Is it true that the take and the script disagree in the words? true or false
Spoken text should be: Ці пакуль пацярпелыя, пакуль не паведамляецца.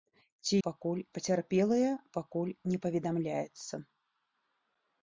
false